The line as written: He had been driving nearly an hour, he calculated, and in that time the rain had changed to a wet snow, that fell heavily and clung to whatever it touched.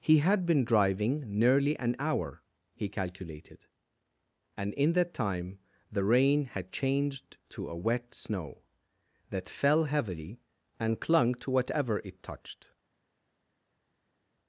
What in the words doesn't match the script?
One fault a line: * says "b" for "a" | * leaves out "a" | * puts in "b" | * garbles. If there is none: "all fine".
all fine